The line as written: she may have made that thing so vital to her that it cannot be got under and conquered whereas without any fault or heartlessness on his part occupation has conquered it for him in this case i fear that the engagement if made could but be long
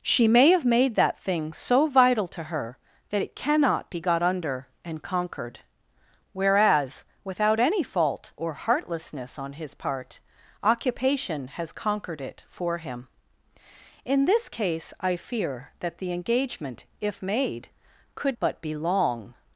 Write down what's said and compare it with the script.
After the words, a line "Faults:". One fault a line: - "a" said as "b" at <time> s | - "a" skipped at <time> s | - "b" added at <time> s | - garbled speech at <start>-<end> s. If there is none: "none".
she may have made that thing so vital to her that it cannot be got under and conquered whereas without any fault or heartlessness on his part occupation has conquered it for him in this case i fear that the engagement if made could but be long
Faults:
none